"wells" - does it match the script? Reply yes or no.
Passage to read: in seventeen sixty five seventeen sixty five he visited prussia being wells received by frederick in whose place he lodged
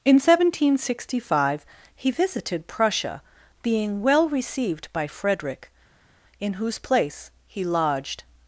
no